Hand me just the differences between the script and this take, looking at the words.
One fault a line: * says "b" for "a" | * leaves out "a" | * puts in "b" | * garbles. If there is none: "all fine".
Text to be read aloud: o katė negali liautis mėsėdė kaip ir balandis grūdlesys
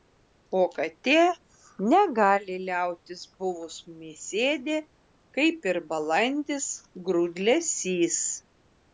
* puts in "buvus"